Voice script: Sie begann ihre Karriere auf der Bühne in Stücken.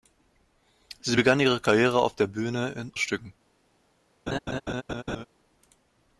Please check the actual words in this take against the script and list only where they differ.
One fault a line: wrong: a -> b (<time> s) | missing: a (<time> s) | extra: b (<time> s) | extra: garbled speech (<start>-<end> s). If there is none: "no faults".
no faults